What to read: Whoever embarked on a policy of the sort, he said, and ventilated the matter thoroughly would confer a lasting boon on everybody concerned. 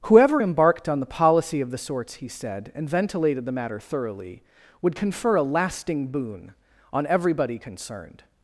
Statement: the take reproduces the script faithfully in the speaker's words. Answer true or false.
false